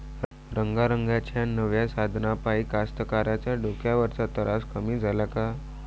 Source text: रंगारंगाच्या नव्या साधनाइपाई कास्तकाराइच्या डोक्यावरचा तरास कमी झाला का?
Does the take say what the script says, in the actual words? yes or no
yes